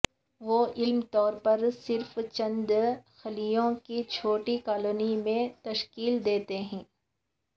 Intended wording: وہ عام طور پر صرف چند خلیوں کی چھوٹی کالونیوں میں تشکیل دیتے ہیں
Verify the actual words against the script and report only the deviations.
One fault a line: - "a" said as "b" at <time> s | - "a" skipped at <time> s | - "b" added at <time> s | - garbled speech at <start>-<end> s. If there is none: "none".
none